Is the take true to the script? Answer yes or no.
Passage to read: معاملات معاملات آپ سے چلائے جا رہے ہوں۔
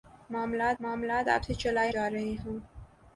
yes